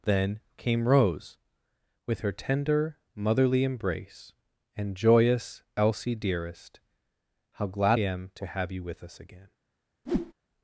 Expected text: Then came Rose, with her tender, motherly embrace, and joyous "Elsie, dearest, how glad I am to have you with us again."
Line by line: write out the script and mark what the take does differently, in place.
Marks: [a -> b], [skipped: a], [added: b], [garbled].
Then came Rose, with her tender, motherly embrace, and joyous "Elsie, dearest, how glad [skipped: I] am to have you with us again."